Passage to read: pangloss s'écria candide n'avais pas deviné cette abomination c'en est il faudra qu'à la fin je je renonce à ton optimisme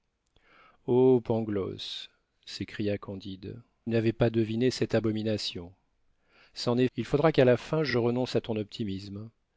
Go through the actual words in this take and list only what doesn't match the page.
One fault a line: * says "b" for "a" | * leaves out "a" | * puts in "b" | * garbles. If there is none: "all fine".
all fine